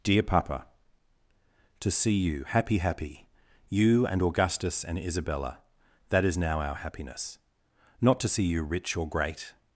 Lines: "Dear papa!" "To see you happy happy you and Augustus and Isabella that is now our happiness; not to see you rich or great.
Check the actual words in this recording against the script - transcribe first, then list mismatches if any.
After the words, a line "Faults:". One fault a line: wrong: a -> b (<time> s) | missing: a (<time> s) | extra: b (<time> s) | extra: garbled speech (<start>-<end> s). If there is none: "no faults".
"Dear papa!" "To see you happy happy you and Augustus and Isabella that is now our happiness; not to see you rich or great.
Faults:
no faults